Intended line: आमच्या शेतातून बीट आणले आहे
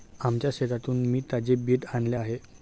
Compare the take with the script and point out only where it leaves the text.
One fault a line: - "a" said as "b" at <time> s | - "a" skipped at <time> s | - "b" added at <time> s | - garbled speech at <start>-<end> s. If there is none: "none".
- "मी ताजे" added at 1.1 s